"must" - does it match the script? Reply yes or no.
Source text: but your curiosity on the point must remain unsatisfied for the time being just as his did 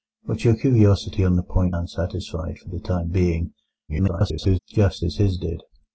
no